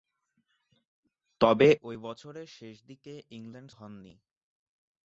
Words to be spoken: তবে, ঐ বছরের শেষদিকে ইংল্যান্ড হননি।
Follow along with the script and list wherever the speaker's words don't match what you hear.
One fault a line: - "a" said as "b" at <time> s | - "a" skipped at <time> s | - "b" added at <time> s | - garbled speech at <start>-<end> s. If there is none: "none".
none